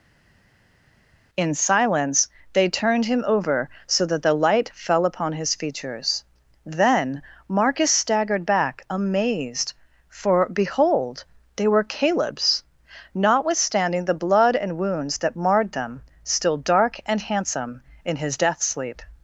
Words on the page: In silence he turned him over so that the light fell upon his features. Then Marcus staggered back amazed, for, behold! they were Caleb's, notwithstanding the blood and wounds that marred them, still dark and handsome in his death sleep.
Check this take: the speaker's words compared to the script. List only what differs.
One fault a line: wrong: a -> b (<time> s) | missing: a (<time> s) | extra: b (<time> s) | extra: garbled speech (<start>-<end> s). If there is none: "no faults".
wrong: he -> they (2.5 s)